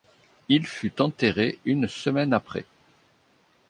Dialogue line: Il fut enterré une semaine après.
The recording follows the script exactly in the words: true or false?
true